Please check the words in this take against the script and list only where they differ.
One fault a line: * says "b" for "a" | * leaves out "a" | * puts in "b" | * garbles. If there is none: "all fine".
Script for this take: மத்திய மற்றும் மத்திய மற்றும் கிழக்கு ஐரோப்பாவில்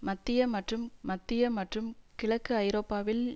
all fine